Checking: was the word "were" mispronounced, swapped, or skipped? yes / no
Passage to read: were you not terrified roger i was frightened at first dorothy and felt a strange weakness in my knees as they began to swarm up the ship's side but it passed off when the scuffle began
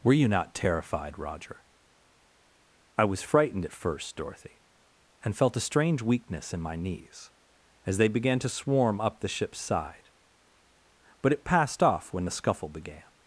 no